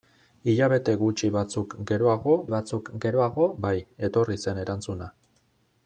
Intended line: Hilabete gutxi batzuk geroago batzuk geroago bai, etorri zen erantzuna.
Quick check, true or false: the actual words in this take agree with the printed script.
true